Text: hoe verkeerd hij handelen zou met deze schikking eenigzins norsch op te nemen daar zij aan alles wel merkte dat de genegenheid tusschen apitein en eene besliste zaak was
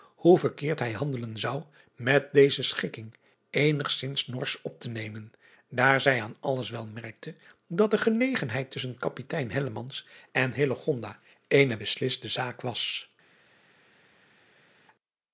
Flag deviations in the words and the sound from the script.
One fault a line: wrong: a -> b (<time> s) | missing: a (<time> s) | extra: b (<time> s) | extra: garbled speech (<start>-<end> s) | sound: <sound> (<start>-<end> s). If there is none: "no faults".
no faults